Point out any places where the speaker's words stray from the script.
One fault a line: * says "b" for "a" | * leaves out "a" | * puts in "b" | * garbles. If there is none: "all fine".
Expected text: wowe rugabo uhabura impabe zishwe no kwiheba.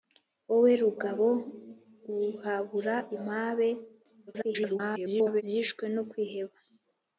* garbles